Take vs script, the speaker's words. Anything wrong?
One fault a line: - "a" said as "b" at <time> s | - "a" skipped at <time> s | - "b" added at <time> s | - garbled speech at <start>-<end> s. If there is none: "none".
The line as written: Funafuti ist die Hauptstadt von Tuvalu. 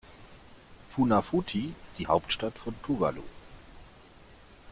none